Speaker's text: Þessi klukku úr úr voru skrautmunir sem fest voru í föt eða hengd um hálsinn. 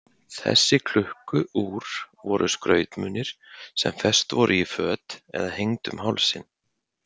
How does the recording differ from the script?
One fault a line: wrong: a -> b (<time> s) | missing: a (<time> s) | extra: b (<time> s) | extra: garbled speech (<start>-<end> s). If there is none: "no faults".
missing: úr (1.9 s)